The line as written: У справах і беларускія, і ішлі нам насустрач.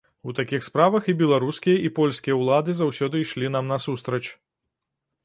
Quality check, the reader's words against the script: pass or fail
fail